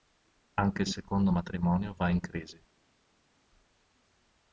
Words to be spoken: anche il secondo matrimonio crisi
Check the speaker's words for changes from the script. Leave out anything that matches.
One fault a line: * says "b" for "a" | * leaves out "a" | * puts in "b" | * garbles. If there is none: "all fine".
* puts in "va in"